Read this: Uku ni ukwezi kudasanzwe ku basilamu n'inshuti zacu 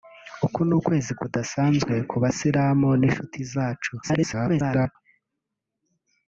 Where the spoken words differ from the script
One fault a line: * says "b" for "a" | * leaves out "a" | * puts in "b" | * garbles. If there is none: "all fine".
* garbles